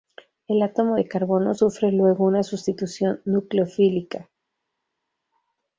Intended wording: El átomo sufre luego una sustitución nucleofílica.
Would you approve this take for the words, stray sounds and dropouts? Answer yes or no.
no